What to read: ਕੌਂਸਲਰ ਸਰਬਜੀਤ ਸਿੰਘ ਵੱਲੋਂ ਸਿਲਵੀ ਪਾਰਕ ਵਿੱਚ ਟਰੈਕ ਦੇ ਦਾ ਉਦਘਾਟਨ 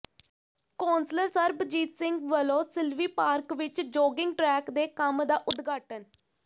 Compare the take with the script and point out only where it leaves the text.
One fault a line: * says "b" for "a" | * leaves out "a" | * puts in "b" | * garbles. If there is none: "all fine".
* puts in "ਜੌਗਿੰਗ"
* puts in "ਕੰਮ"